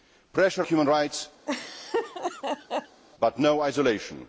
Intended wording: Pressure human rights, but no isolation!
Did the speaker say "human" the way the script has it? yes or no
yes